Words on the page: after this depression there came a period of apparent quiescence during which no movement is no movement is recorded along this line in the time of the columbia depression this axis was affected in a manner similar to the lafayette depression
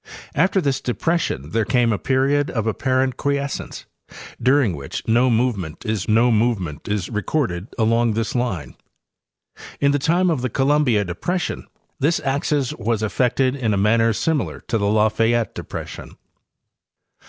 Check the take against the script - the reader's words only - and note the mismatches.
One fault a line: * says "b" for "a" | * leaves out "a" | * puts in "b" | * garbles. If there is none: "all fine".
all fine